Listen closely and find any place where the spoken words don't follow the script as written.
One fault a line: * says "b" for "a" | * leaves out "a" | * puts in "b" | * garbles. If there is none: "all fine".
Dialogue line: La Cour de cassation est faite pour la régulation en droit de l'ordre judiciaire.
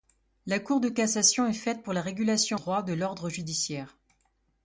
* leaves out "en"